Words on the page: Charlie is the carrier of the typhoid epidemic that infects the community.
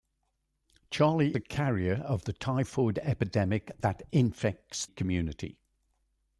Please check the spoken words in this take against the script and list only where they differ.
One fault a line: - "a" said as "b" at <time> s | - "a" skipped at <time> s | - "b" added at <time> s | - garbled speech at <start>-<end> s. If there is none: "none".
- "is" skipped at 1.4 s
- "the" skipped at 4.9 s